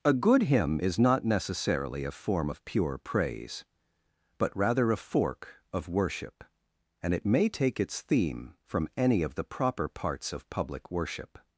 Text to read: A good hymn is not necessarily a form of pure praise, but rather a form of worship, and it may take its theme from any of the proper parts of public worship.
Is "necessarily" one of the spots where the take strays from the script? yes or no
no